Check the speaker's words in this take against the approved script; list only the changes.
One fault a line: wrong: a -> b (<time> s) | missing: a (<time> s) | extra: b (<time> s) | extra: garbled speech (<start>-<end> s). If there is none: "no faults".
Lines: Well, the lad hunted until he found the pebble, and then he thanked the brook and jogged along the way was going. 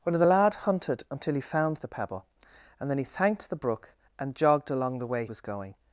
no faults